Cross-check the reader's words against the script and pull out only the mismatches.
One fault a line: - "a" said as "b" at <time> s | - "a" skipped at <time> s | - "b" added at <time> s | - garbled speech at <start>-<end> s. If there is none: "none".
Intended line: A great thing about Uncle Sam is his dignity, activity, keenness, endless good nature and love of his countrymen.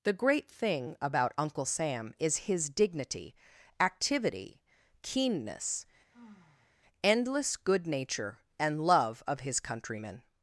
- "A" said as "The" at 0.0 s